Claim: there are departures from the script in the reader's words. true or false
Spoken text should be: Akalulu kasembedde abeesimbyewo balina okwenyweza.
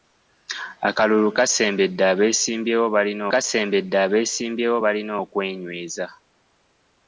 true